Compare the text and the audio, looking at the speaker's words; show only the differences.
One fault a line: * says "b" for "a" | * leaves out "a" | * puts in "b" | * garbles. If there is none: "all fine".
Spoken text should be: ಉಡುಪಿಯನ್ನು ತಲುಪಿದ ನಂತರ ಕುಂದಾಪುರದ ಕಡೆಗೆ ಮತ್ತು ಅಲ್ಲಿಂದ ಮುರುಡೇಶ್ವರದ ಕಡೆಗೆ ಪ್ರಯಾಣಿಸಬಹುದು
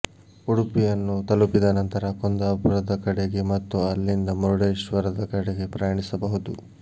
all fine